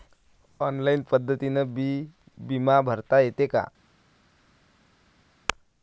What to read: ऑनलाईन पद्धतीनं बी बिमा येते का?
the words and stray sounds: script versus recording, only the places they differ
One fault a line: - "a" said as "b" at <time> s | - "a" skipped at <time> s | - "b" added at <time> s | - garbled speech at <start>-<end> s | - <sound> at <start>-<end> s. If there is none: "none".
- "भरता" added at 2.8 s